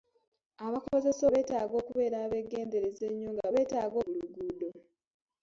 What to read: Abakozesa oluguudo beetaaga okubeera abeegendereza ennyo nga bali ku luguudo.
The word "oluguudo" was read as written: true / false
false